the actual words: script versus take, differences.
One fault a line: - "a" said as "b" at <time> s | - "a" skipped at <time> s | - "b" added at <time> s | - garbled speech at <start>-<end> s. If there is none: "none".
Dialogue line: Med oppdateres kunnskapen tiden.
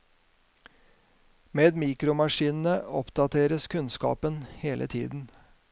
- "mikromaskinene" added at 1.8 s
- "hele" added at 4.6 s